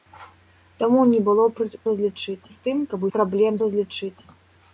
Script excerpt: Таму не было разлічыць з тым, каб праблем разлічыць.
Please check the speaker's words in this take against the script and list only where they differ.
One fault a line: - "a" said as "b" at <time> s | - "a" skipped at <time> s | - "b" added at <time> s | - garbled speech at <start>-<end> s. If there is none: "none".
none